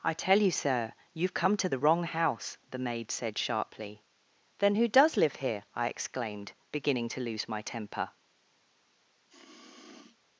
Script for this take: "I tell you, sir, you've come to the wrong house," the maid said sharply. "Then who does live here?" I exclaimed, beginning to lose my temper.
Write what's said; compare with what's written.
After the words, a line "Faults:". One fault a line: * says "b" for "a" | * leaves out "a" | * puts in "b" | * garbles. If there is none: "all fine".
"I tell you, sir, you've come to the wrong house," the maid said sharply. "Then who does live here?" I exclaimed, beginning to lose my temper.
Faults:
all fine